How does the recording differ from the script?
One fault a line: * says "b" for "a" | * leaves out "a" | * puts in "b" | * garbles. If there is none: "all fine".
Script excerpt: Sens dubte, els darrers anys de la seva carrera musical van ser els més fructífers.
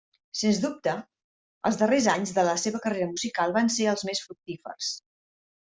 all fine